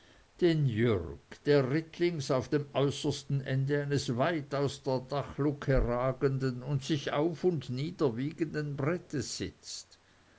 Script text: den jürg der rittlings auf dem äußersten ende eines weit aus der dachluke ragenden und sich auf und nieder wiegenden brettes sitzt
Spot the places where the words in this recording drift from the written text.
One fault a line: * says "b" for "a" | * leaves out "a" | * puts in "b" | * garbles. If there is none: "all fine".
all fine